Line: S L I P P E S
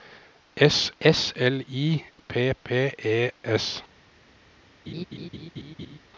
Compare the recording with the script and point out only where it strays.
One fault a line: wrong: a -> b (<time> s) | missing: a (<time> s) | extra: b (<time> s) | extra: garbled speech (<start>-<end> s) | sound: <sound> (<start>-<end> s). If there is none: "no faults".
extra: s (1.0 s)
sound: laugh (4.9-6.0 s)